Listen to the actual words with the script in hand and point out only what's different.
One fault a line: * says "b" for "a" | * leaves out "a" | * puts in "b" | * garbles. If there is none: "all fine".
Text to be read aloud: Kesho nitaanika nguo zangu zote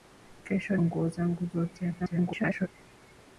* leaves out "nitaanika"
* garbles